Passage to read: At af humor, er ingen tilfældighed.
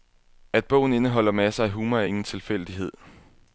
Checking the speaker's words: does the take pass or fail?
fail